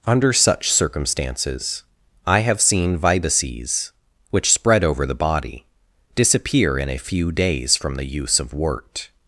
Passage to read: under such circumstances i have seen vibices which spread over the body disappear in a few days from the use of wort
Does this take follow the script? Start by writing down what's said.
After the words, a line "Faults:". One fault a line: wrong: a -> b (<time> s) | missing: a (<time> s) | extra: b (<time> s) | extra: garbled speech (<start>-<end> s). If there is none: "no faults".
under such circumstances i have seen vibices which spread over the body disappear in a few days from the use of wort
Faults:
no faults